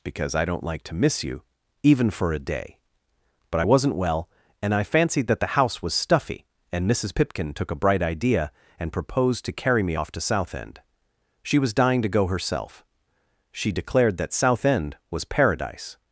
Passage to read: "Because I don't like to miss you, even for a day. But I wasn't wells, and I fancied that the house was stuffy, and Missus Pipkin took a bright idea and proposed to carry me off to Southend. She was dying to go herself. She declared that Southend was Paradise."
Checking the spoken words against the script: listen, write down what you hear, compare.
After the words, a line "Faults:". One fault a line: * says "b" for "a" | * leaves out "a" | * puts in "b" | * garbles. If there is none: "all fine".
"Because I don't like to miss you, even for a day. But I wasn't well, and I fancied that the house was stuffy, and Missus Pipkin took a bright idea and proposed to carry me off to Southend. She was dying to go herself. She declared that Southend was Paradise."
Faults:
* says "well" for "wells"